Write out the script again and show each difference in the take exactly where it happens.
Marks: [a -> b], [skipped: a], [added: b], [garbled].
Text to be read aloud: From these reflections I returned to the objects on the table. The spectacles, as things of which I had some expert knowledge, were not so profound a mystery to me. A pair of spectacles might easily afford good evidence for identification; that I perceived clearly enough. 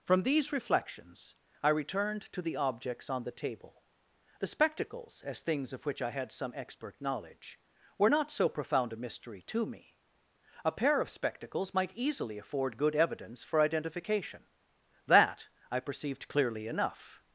From these reflections I returned to the objects on the table. The spectacles, as things of which I had some expert knowledge, were not so profound a mystery to me. A pair of spectacles might easily afford good evidence for identification; that I perceived clearly enough.